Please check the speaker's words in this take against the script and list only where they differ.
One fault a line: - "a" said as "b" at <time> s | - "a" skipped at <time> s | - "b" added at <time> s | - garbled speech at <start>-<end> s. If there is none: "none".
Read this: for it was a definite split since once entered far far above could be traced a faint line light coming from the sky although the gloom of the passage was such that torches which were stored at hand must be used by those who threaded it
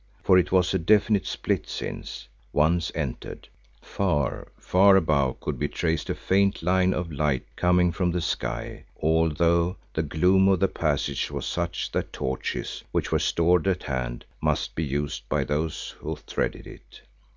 - "of" added at 6.9 s